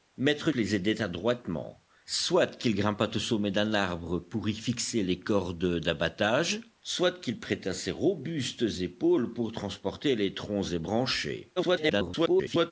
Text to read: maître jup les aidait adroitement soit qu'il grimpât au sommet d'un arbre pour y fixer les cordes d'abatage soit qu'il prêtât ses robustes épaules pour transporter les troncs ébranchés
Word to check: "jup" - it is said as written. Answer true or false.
false